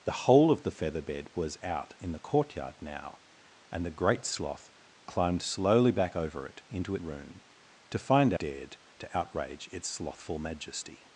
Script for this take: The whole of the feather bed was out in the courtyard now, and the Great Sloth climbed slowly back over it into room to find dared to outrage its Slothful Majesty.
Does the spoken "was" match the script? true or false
true